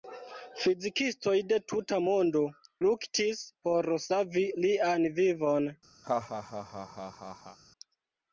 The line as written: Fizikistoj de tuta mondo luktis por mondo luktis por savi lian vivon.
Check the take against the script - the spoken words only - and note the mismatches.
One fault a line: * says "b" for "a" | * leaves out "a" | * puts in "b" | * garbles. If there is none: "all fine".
* leaves out "mondo luktis por"